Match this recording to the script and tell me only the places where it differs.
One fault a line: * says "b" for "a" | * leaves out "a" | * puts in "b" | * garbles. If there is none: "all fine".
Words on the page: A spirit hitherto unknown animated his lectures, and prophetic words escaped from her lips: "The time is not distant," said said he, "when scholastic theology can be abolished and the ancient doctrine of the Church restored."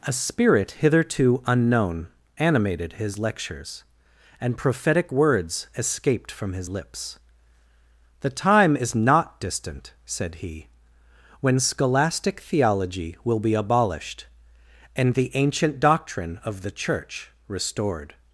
* says "his" for "her"
* leaves out "said"
* says "will" for "can"